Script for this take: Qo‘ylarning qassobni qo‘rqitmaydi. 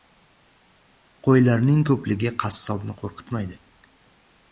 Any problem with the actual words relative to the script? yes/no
yes